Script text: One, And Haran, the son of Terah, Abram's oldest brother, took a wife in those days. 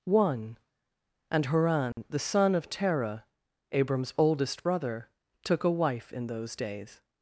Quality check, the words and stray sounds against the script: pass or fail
fail